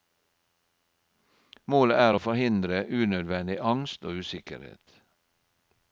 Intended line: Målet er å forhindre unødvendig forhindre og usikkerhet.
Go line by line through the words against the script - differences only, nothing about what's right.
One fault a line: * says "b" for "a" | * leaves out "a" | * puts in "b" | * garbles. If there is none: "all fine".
* says "angst" for "forhindre"